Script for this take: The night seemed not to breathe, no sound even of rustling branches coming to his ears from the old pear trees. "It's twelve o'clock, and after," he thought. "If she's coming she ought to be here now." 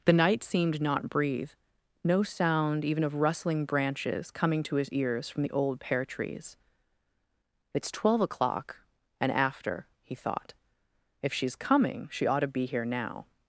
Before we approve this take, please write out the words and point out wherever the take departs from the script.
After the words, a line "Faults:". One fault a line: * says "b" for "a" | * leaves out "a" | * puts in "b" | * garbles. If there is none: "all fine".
The night seemed not breathe, no sound even of rustling branches coming to his ears from the old pear trees. "It's twelve o'clock, and after," he thought. "If she's coming she ought to be here now."
Faults:
* leaves out "to"